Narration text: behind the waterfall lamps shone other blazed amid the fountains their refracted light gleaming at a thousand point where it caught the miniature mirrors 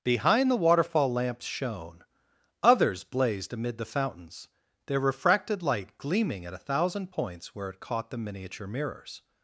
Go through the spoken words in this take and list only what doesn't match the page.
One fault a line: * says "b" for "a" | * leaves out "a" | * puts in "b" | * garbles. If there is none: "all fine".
* says "others" for "other"
* says "points" for "point"